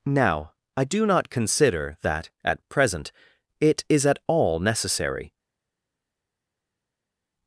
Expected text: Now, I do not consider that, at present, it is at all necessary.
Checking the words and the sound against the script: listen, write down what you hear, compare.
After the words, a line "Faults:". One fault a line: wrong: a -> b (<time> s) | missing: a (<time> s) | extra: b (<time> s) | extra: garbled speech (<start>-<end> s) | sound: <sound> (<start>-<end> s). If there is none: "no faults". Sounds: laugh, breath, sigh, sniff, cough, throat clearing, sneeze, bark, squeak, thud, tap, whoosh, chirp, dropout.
Now, I do not consider that, at present, it is at all necessary.
Faults:
no faults